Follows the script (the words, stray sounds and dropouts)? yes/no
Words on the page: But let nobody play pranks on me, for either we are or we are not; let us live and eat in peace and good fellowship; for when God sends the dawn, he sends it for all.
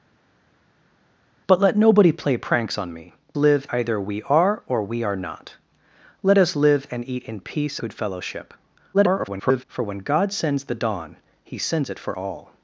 no